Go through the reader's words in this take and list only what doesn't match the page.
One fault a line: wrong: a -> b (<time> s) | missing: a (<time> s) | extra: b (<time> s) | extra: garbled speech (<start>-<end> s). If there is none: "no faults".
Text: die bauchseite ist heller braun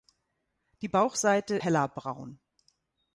missing: ist (1.6 s)